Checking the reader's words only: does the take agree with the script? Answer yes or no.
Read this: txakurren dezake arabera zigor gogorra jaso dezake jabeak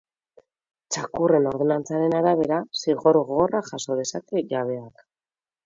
no